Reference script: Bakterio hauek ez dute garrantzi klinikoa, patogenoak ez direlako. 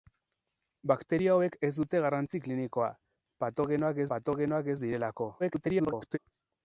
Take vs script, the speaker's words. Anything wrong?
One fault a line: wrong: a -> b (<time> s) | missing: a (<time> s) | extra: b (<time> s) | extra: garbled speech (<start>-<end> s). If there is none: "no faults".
extra: patogenoak (4.1 s)
extra: garbled speech (5.4-6.2 s)